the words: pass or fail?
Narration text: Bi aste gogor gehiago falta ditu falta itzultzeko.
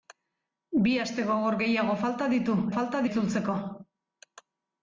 pass